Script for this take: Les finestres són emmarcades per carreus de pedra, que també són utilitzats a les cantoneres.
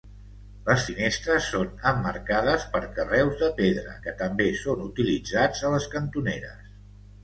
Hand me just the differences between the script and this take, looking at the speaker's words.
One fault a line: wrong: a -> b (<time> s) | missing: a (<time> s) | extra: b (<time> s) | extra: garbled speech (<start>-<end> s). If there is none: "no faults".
no faults